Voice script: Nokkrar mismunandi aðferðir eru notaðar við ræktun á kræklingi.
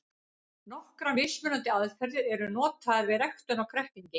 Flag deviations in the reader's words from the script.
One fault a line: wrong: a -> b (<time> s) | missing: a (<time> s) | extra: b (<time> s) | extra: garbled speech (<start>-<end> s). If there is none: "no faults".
no faults